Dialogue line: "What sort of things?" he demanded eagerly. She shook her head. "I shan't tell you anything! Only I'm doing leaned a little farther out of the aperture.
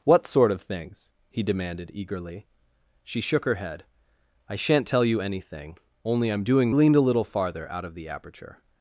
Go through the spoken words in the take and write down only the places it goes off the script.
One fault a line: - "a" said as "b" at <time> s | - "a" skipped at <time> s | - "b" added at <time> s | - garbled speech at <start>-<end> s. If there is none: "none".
none